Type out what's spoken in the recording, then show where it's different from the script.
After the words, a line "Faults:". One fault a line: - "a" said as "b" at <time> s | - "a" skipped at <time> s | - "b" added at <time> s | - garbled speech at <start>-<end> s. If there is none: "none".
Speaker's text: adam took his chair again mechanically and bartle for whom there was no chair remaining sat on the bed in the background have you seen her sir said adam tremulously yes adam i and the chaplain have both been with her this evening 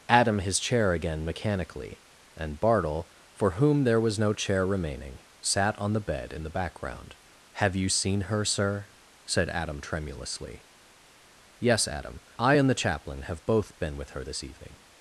adam his chair again mechanically and bartle for whom there was no chair remaining sat on the bed in the background have you seen her sir said adam tremulously yes adam i and the chaplain have both been with her this evening
Faults:
- "took" skipped at 0.4 s